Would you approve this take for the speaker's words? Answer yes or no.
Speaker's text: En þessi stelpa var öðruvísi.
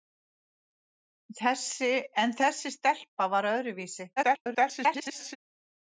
no